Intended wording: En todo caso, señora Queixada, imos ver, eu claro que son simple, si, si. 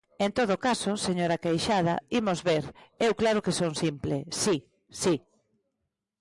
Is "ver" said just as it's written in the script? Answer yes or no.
yes